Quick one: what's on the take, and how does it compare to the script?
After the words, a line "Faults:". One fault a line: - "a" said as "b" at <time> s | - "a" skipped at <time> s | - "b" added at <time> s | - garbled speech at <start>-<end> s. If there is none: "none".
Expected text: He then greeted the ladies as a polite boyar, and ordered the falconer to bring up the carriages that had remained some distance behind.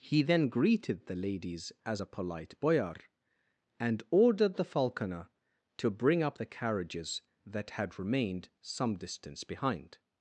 He then greeted the ladies as a polite boyar, and ordered the falconer to bring up the carriages that had remained some distance behind.
Faults:
none